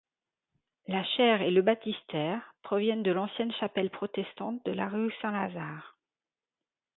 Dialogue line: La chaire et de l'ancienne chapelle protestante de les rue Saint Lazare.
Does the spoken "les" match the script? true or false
false